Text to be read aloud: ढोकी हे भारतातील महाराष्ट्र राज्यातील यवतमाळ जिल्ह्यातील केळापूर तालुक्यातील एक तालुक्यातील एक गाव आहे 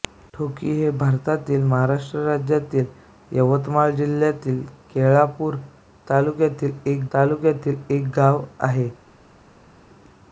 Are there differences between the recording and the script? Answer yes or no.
no